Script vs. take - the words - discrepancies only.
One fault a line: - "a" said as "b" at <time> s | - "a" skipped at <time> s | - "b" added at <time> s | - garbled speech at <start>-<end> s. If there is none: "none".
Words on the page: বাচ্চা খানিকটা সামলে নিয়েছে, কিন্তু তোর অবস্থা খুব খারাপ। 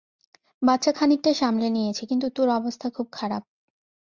none